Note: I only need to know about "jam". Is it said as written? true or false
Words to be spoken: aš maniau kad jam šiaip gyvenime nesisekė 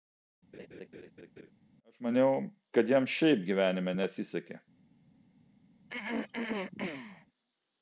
true